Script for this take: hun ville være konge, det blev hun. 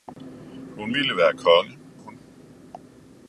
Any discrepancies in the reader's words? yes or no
yes